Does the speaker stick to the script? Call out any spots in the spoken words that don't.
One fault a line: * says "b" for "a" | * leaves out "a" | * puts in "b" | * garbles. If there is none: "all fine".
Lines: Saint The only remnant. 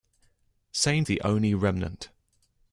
all fine